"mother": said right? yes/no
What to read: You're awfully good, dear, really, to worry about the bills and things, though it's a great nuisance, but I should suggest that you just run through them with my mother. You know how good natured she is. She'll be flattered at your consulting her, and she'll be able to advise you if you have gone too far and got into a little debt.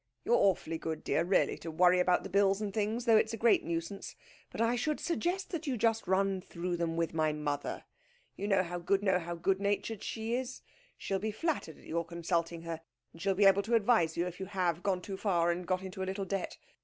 yes